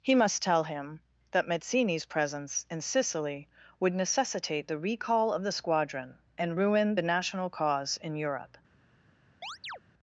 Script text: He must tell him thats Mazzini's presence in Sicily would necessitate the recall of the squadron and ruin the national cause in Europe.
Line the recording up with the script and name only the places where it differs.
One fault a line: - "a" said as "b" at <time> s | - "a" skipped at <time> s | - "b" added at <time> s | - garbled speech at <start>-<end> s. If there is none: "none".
- "thats" said as "that" at 1.3 s